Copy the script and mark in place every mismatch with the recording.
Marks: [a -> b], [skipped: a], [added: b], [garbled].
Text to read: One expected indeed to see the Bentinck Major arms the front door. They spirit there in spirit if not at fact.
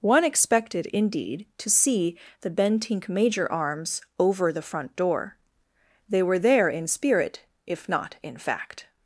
One expected indeed to see the Bentinck Major arms [added: over] the front door. They [spirit -> were] there in spirit if not [at -> in] fact.